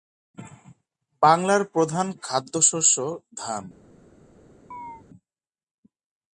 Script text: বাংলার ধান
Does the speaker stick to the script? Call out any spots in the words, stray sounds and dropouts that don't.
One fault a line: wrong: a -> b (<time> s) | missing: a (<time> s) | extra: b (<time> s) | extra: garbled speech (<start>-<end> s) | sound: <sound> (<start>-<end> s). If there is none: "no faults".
extra: প্রধান খাদ্যশস্য (1.7 s)
sound: chirp (4.7-5.0 s)